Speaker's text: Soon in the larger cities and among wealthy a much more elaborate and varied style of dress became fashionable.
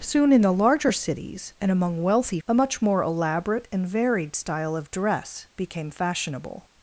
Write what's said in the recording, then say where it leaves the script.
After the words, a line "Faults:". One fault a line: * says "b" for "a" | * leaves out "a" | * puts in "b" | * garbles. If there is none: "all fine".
Soon in the larger cities and among wealthy a much more elaborate and varied style of dress became fashionable.
Faults:
all fine